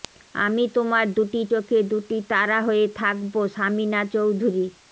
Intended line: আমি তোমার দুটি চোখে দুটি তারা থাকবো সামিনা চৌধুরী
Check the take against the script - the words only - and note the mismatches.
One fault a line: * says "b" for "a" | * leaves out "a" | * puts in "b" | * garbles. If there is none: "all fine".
* puts in "হয়ে"